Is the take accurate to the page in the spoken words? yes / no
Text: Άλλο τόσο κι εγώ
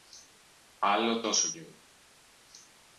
yes